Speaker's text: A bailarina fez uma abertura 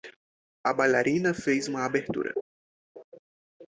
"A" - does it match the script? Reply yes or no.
yes